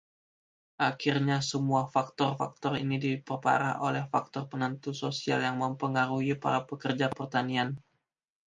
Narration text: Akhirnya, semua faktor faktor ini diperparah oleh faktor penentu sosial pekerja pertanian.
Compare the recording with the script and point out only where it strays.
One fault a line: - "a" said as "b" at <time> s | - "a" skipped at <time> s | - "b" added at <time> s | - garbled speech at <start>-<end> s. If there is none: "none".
- "yang mempengaruhi para" added at 5.4 s